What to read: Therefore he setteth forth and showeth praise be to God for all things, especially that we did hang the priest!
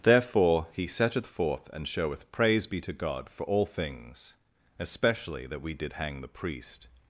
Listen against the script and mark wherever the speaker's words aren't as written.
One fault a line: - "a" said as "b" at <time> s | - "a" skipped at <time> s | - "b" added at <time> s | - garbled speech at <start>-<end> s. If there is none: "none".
none